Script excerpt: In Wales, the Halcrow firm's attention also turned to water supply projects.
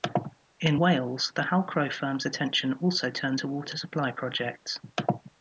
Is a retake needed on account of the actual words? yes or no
no